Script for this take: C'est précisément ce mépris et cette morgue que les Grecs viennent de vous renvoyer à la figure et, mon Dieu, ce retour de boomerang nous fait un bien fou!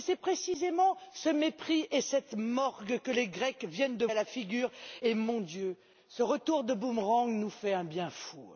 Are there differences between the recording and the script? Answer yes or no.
yes